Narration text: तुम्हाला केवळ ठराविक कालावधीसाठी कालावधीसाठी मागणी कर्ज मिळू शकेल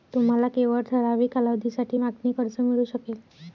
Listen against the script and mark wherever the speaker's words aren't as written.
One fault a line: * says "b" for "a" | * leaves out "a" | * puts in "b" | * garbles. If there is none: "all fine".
* leaves out "कालावधीसाठी"